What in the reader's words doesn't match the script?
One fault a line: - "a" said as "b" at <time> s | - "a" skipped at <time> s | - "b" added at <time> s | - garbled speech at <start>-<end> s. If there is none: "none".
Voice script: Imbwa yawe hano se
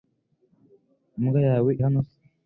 none